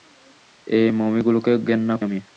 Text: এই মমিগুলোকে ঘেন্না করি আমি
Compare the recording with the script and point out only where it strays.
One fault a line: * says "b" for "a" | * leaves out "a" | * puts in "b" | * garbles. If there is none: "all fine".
* leaves out "করি"